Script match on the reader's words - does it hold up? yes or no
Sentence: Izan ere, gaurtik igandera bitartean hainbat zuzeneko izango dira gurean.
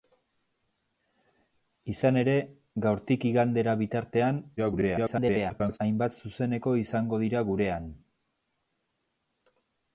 no